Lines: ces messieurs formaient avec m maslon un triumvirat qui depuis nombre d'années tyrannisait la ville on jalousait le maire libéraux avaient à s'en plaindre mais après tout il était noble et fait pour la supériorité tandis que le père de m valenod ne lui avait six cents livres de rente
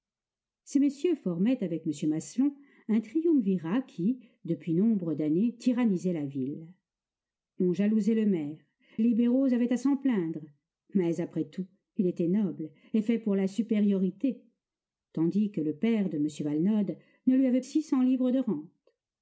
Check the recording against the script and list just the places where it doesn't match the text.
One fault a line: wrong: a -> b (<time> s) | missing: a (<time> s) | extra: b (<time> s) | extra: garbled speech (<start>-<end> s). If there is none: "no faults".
no faults